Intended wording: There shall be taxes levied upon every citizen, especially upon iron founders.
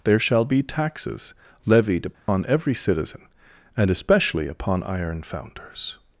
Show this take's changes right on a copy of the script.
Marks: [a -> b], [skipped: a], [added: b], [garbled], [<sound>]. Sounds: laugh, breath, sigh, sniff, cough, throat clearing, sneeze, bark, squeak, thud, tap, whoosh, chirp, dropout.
There shall be taxes levied upon [dropout] every citizen, [added: and] especially upon iron founders.